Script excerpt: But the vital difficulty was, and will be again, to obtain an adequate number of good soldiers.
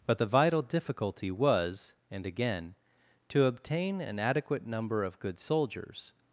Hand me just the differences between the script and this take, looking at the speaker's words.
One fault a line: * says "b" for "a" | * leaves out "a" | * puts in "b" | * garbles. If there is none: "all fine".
* leaves out "will be"